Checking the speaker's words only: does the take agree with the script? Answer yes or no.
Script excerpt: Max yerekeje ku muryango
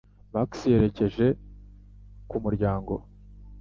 yes